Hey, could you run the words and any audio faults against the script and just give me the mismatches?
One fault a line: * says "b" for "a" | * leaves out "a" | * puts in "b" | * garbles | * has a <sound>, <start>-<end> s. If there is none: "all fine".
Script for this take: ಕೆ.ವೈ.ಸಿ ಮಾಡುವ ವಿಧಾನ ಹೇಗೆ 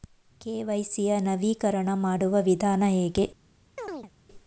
* puts in "ಯ ನವೀಕರಣ"
* has a chirp, 3.8-4.1 s